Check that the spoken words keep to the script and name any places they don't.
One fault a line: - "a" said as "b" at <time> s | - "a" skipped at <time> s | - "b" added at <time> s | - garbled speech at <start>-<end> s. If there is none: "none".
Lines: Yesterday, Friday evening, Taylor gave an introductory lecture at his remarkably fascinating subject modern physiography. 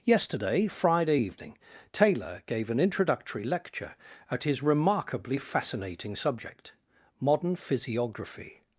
none